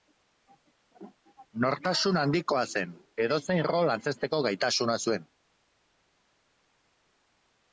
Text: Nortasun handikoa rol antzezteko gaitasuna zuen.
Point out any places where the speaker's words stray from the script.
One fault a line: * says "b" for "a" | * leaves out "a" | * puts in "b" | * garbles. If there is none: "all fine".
* puts in "zen edozein"